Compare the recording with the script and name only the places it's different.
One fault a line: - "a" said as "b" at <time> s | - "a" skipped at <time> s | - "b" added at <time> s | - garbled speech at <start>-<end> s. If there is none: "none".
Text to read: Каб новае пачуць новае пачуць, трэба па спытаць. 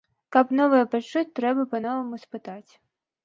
- "новае пачуць" skipped at 1.2 s
- "новаму" added at 1.9 s